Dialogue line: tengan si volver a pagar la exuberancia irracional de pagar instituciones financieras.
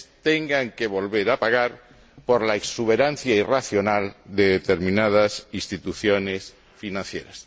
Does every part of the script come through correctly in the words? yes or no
no